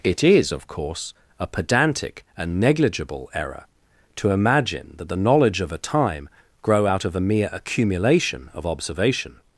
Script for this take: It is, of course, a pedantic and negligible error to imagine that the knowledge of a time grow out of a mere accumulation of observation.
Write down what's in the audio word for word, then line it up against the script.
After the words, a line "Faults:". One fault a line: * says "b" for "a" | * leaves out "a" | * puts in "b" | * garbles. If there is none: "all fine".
It is, of course, a pedantic and negligible error to imagine that the knowledge of a time grow out of a mere accumulation of observation.
Faults:
all fine